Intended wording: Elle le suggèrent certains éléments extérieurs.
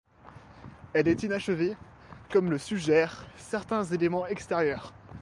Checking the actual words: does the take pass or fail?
fail